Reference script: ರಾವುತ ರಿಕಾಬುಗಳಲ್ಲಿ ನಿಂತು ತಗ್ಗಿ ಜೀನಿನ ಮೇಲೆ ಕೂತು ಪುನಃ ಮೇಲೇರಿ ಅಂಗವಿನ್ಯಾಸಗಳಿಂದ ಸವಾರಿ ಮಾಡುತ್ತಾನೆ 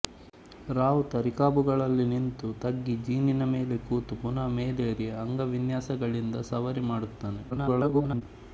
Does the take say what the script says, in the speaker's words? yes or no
no